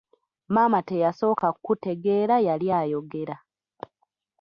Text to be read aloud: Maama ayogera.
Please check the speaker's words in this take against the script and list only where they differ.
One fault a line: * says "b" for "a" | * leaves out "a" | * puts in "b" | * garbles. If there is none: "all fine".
* puts in "teyasooka kutegeera yali"